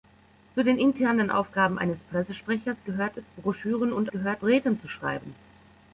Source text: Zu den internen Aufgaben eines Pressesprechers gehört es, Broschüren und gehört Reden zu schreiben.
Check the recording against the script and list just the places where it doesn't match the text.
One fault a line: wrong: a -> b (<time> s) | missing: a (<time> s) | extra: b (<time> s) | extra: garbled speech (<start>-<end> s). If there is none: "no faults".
no faults